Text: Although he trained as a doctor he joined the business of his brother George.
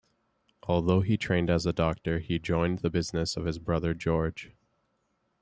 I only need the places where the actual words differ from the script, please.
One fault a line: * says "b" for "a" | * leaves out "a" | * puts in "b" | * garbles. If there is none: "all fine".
all fine